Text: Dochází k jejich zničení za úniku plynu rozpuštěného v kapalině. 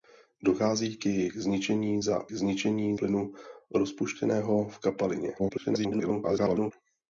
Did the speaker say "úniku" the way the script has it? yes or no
no